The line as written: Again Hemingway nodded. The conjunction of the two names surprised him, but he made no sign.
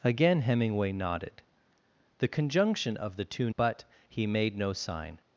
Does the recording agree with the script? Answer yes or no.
no